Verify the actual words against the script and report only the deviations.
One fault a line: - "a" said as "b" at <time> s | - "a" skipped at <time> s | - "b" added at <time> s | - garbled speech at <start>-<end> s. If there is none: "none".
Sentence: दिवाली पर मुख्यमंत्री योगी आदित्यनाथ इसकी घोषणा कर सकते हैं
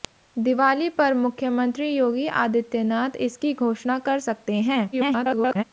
- garbled speech at 4.9-5.6 s